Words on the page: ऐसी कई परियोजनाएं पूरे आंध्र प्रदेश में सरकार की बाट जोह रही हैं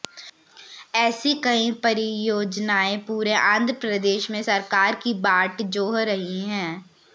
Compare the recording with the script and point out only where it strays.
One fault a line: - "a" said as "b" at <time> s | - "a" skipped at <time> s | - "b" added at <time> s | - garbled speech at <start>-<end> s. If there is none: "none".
none